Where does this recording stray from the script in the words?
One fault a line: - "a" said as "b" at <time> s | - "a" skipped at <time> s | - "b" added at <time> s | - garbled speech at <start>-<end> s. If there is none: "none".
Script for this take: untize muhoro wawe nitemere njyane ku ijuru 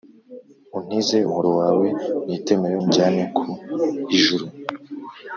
none